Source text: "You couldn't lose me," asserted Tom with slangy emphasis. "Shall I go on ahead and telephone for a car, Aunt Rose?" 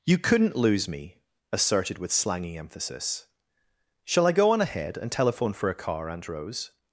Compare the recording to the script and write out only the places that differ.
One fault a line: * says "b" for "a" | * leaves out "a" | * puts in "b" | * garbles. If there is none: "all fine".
* leaves out "Tom"